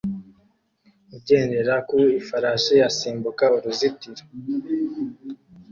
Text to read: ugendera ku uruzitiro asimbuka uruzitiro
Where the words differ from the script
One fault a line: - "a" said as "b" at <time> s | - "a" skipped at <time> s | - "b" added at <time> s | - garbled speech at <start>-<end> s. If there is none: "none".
- "uruzitiro" said as "ifarashi" at 2.2 s